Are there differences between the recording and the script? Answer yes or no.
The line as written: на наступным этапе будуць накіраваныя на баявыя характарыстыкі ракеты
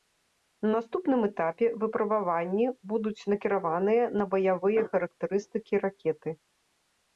yes